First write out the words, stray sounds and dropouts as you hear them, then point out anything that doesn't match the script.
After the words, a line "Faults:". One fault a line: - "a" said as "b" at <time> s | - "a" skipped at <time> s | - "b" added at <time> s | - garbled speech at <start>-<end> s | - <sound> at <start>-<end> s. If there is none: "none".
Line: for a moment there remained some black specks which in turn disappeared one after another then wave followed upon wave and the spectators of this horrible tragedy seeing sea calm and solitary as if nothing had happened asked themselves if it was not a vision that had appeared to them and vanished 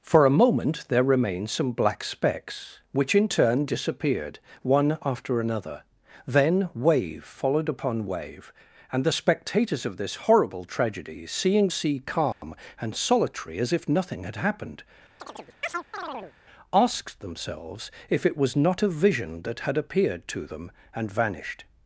for a moment there remained some black specks which in turn disappeared one after another then wave followed upon wave and the spectators of this horrible tragedy seeing sea calm and solitary as if nothing had happened asked themselves if it was not a vision that had appeared to them and vanished
Faults:
- dropout at 12.3-12.4 s
- chirp at 15.2-16.3 s